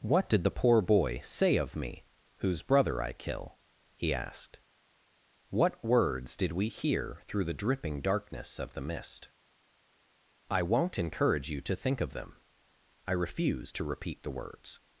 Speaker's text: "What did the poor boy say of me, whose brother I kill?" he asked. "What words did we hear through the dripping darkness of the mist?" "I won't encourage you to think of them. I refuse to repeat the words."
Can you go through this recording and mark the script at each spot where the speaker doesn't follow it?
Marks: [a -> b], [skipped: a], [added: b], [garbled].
"What did the poor boy say of me, whose brother I kill?" he asked. "What words did we hear through the dripping darkness of the mist?" "I won't encourage you to think of them. I refuse to repeat the words."